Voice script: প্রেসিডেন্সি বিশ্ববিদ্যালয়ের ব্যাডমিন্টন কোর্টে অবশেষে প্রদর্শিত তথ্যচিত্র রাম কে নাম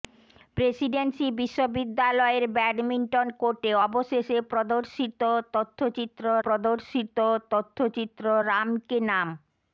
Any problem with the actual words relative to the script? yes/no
yes